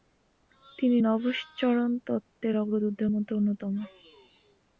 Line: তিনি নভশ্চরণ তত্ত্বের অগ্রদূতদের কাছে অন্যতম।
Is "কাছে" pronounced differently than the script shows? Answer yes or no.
yes